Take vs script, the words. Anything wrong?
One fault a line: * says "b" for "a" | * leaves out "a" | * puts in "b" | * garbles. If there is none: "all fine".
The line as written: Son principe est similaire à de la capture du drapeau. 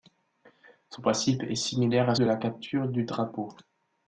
all fine